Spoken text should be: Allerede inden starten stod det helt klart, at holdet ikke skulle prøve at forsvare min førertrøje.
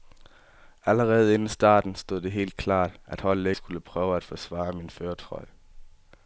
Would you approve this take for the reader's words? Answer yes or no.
no